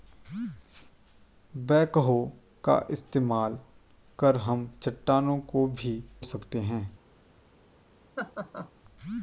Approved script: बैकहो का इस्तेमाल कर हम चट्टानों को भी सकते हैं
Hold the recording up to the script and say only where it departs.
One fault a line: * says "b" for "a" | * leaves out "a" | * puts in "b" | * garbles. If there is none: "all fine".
all fine